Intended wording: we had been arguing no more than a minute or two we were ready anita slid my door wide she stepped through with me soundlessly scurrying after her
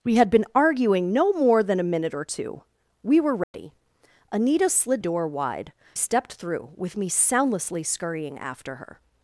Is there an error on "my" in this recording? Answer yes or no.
yes